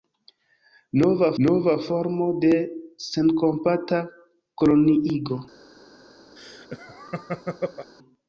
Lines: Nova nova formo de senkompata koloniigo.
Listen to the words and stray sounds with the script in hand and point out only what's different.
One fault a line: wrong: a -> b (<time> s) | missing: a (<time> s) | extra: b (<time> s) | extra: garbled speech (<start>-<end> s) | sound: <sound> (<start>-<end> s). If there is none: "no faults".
sound: laugh (6.4-7.9 s)